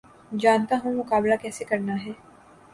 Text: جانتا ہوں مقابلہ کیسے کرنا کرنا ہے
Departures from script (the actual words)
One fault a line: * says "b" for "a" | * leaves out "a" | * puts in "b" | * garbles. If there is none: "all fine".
* leaves out "کرنا"